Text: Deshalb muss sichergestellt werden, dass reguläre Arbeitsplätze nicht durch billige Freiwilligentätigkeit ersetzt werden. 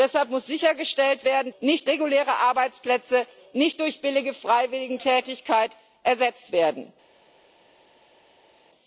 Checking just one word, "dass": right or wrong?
wrong